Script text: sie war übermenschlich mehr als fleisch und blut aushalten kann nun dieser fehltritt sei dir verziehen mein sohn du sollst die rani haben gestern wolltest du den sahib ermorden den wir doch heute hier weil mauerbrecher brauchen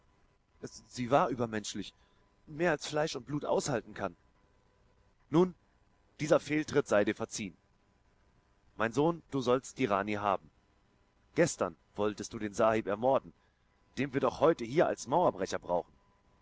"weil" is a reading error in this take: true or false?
true